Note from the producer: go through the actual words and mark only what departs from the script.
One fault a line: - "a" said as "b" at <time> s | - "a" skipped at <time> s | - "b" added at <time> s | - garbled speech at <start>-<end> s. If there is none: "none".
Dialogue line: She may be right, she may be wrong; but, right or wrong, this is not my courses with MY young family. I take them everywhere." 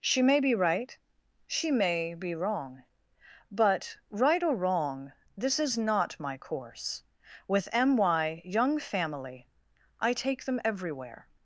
- "courses" said as "course" at 6.4 s